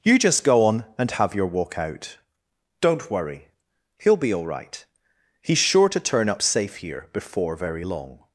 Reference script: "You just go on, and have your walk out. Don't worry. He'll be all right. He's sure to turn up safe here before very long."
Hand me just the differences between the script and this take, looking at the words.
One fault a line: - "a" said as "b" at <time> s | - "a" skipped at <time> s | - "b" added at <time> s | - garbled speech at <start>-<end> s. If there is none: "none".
none